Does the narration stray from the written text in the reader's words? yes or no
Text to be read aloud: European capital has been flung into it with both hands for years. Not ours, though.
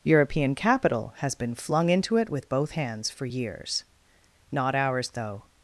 no